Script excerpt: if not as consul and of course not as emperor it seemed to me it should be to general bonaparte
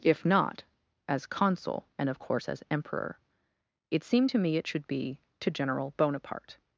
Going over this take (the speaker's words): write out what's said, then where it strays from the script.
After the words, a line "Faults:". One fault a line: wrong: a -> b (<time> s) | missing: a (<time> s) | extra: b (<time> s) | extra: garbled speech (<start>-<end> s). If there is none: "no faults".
if not as consul and of course as emperor it seemed to me it should be to general bonaparte
Faults:
missing: not (2.5 s)